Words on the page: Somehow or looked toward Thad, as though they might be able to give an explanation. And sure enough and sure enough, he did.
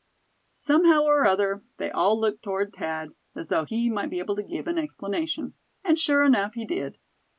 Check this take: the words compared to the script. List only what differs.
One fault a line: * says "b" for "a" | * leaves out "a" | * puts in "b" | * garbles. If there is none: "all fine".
* puts in "other they all"
* says "he" for "they"
* leaves out "and sure enough"